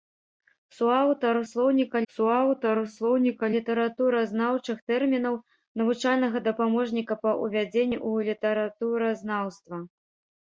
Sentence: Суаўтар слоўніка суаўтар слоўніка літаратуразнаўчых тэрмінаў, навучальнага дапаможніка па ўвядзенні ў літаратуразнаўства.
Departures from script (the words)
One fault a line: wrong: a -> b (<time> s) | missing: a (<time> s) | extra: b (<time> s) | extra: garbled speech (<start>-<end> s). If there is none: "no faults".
no faults